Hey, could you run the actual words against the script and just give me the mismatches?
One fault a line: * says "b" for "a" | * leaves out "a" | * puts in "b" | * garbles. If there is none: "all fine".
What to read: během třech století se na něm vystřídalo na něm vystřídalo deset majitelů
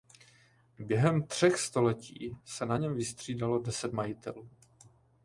* leaves out "na něm vystřídalo"